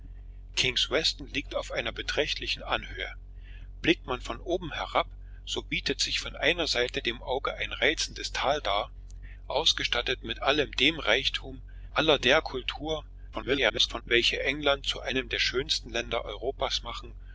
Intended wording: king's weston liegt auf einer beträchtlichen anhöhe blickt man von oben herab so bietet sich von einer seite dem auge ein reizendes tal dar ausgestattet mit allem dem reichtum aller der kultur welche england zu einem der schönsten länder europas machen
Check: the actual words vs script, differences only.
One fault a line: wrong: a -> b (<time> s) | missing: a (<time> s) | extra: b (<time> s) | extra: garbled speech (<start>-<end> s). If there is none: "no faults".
extra: garbled speech (13.3-14.0 s)